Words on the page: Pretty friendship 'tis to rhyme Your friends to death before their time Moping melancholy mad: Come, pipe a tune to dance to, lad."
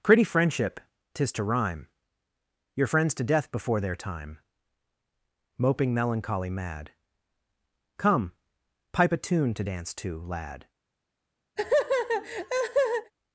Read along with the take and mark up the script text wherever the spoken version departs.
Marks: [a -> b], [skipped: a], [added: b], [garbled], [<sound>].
Pretty friendship 'tis to rhyme Your friends to death before their time Moping melancholy mad: Come, pipe a tune to dance to, lad." [laugh]